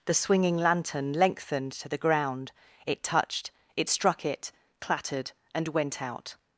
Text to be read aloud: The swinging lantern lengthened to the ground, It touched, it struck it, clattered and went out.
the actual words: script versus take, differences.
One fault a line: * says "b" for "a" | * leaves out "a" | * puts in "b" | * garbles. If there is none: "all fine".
all fine